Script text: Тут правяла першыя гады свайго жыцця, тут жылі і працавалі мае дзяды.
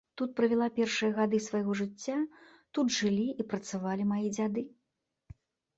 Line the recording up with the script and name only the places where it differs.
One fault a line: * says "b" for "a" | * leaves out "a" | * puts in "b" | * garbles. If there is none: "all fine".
all fine